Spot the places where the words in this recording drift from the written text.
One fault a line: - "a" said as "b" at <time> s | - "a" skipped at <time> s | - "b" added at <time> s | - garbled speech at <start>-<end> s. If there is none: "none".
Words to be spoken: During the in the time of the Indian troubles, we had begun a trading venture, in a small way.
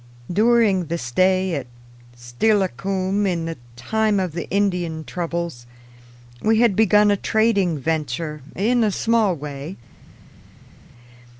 - "stay at Steilacoom" added at 1.0 s